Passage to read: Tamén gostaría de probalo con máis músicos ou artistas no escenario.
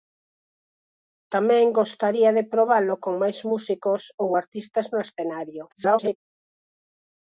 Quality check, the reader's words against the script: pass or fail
fail